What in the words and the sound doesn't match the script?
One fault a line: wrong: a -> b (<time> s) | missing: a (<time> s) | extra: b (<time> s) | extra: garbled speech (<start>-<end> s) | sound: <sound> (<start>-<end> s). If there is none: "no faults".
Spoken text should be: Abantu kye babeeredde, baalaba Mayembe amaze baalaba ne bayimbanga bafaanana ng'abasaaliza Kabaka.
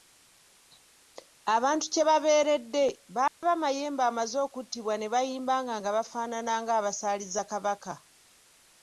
sound: dropout (3.3-3.4 s)
wrong: baalaba -> okuttibwa (4.5 s)
extra: nga (5.8 s)